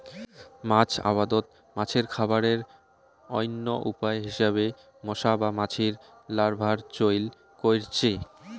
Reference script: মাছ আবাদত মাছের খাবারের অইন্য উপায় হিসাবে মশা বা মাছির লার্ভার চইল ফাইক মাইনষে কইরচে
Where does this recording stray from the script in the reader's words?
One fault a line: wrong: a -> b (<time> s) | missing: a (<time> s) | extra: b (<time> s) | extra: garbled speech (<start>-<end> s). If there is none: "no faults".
missing: ফাইক মাইনষে (7.2 s)